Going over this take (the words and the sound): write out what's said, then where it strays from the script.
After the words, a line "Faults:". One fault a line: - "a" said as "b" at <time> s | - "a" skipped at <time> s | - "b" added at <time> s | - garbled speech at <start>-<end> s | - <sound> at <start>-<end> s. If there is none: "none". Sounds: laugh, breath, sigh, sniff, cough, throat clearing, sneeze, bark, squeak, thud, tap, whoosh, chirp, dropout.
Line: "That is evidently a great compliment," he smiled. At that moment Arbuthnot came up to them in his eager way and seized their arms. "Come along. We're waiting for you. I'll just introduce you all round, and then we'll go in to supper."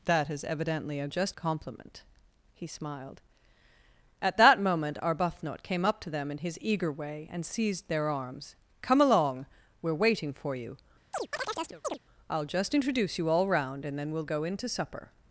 "That is evidently a just compliment," he smiled. At that moment Arbuthnot came up to them in his eager way and seized their arms. "Come along. We're waiting for you. I'll just introduce you all round, and then we'll go in to supper."
Faults:
- "great" said as "just" at 1.1 s
- chirp at 11.1-12.0 s